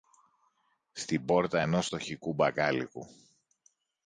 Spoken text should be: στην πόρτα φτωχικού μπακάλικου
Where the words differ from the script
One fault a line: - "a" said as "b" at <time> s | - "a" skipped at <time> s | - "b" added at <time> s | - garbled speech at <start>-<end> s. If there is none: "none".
- "ενός" added at 1.6 s